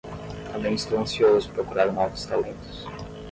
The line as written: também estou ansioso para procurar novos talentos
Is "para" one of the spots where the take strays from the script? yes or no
yes